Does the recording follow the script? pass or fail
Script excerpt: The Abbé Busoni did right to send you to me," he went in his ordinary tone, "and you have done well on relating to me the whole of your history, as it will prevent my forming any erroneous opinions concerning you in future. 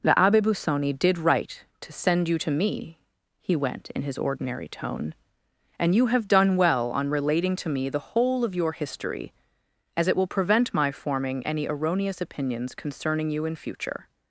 pass